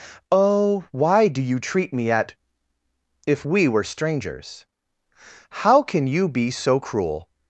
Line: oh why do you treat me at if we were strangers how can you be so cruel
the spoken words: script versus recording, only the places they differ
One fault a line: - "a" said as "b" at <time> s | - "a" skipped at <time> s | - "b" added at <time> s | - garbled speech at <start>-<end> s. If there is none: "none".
none